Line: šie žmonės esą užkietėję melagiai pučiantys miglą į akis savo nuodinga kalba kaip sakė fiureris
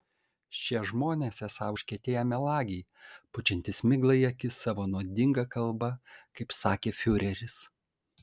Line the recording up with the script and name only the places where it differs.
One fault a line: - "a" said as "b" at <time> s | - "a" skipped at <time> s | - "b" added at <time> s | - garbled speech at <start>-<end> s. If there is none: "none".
none